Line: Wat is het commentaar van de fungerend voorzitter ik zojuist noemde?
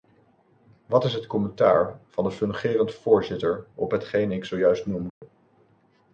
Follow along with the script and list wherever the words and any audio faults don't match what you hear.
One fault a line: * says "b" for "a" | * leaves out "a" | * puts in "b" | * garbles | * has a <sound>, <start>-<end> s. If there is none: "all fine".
* puts in "op hetgeen"
* has a dropout, 5.1-5.2 s